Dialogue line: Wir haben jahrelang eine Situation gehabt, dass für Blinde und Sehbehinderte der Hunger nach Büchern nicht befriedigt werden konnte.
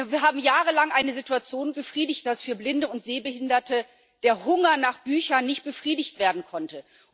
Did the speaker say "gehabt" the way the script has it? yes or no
no